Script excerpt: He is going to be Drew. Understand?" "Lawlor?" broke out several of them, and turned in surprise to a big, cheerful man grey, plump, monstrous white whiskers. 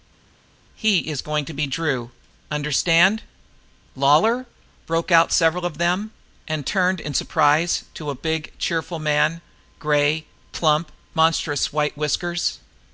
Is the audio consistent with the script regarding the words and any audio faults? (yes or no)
yes